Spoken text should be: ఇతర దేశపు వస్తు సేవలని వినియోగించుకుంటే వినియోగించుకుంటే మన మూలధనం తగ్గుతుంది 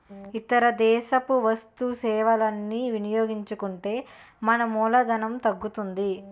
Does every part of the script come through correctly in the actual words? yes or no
no